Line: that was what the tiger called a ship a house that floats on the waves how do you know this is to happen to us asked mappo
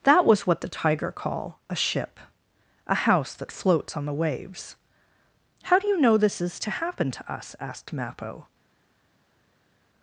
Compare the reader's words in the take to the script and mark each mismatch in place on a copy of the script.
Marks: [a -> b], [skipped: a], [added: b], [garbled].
that was what the tiger [called -> call] a ship a house that floats on the waves how do you know this is to happen to us asked mappo